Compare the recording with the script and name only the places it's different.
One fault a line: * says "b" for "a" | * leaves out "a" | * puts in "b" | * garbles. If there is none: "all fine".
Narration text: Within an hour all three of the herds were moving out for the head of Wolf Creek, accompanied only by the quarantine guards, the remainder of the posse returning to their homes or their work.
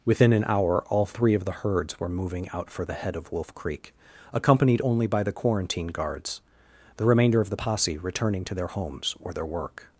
all fine